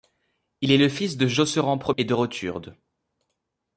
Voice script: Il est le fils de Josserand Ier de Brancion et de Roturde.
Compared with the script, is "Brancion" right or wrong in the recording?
wrong